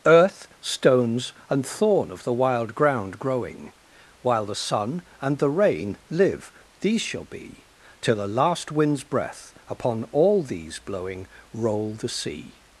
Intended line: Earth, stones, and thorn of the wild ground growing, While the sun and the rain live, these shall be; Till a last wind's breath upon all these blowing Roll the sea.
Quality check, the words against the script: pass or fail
pass